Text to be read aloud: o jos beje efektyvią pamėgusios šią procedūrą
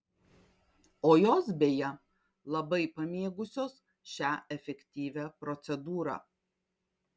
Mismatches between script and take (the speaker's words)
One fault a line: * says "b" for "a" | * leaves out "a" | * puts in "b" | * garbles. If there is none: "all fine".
* says "labai" for "efektyvią"
* puts in "efektyvią"